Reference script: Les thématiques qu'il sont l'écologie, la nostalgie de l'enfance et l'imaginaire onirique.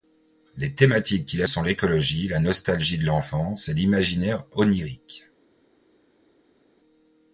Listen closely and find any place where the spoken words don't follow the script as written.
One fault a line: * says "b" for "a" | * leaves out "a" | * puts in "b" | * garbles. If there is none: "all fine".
all fine